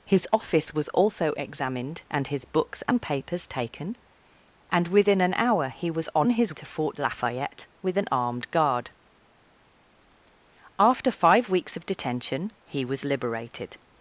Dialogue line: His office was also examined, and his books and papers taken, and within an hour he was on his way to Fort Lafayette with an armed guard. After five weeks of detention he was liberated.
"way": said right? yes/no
no